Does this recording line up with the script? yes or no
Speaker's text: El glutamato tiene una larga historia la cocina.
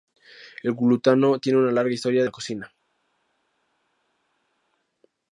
yes